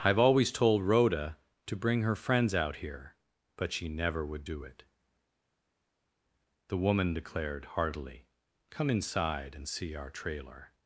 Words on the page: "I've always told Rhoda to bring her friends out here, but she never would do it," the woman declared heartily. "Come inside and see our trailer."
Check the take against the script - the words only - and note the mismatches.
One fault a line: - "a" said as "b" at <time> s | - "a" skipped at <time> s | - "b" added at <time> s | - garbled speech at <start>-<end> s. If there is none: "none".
none